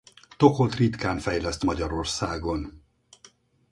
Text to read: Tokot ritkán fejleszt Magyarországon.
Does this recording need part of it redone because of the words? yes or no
no